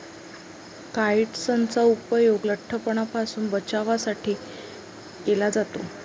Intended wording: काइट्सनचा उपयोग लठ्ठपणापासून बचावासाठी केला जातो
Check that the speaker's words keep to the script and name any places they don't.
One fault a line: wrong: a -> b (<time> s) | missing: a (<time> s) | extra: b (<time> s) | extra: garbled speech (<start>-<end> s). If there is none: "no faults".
no faults